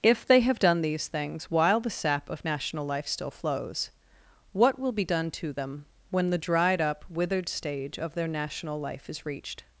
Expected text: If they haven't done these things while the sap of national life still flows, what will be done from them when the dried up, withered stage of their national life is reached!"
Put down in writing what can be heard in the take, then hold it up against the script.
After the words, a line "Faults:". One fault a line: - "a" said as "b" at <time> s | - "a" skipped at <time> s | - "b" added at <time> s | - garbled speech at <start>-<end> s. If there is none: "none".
If they have done these things while the sap of national life still flows, what will be done to them when the dried up, withered stage of their national life is reached!"
Faults:
- "haven't" said as "have" at 0.4 s
- "from" said as "to" at 5.3 s